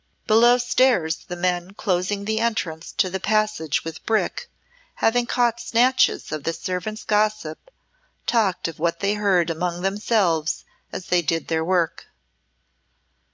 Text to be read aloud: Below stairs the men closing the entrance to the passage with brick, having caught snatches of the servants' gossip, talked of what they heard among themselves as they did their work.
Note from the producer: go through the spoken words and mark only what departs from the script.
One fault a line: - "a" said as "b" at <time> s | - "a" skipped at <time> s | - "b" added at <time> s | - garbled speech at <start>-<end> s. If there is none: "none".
none